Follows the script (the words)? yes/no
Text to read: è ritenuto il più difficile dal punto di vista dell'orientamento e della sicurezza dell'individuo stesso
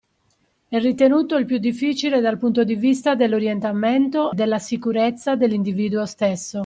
no